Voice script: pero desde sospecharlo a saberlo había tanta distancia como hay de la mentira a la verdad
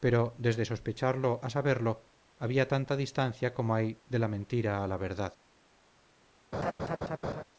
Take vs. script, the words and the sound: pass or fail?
fail